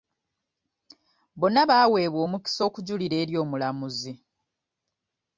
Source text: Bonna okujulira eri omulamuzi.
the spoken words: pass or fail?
fail